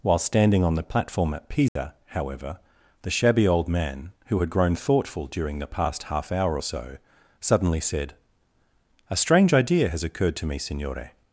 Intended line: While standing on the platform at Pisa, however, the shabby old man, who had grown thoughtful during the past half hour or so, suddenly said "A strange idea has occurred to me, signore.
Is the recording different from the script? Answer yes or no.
no